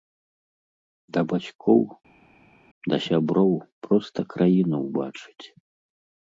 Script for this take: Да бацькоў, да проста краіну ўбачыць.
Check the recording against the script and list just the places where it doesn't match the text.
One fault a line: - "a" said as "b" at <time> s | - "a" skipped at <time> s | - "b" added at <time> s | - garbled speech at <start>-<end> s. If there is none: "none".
- "сяброў" added at 3.1 s